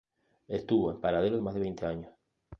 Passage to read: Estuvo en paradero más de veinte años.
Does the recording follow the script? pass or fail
pass